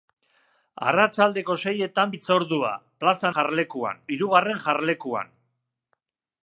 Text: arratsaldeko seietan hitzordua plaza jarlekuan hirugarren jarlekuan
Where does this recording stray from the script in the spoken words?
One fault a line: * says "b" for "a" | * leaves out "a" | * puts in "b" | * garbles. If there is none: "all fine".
all fine